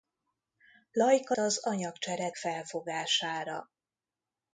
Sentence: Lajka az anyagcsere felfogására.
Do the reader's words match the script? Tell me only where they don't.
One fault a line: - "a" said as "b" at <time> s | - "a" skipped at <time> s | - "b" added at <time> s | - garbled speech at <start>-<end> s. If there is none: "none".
none